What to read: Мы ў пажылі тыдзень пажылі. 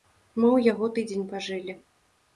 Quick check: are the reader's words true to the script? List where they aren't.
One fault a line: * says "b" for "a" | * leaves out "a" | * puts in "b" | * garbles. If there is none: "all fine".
* says "яго" for "пажылі"